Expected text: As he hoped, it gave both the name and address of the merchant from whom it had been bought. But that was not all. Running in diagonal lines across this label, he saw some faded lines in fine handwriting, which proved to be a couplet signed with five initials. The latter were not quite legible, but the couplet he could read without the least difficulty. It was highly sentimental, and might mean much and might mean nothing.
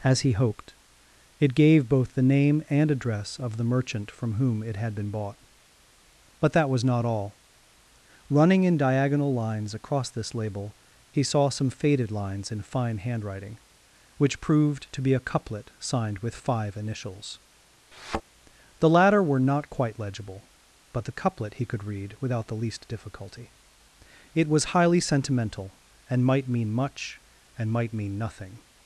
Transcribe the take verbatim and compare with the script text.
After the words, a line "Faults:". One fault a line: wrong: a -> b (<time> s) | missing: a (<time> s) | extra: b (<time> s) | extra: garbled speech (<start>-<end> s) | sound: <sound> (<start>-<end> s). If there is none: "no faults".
As he hoped, it gave both the name and address of the merchant from whom it had been bought. But that was not all. Running in diagonal lines across this label, he saw some faded lines in fine handwriting, which proved to be a couplet signed with five initials. The latter were not quite legible, but the couplet he could read without the least difficulty. It was highly sentimental, and might mean much and might mean nothing.
Faults:
sound: thud (17.9-18.2 s)